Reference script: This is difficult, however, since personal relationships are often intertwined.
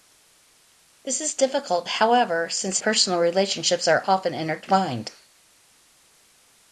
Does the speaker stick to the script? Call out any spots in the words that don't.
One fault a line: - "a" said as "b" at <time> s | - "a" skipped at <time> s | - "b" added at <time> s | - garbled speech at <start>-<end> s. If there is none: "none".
none